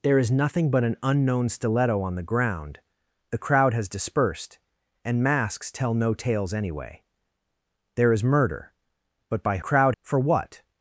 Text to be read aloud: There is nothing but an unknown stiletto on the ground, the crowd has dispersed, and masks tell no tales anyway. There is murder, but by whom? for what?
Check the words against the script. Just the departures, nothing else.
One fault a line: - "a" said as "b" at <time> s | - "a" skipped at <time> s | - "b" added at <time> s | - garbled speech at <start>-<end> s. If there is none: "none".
- "whom" said as "crowd" at 9.6 s